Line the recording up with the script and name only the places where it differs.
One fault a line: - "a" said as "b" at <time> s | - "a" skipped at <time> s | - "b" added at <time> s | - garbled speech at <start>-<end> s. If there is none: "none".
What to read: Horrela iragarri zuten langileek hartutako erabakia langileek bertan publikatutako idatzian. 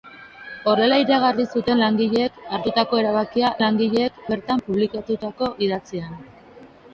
none